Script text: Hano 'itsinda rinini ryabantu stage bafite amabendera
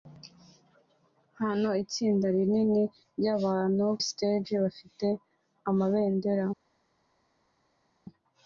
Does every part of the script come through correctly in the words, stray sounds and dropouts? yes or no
yes